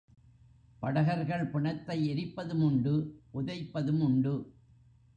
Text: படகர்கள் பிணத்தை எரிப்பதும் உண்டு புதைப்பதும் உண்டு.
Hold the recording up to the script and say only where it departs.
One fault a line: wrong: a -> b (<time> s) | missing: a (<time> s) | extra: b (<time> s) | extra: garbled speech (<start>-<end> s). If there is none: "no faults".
no faults